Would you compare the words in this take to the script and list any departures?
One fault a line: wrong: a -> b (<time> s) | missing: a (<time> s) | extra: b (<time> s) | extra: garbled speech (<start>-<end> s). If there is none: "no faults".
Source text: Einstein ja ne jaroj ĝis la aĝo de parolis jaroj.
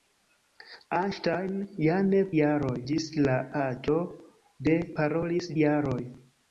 no faults